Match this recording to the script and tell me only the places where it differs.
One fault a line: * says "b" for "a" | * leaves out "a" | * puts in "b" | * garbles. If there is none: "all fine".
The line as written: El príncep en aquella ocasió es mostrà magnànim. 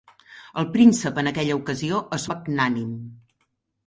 * leaves out "mostrà"